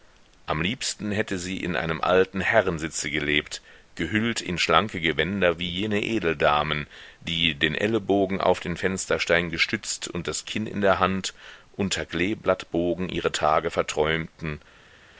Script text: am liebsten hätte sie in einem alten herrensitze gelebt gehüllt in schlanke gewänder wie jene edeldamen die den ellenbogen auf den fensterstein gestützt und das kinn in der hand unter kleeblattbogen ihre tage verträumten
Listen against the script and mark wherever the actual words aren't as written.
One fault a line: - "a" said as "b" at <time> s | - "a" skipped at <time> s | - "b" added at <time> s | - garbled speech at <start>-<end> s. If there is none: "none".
none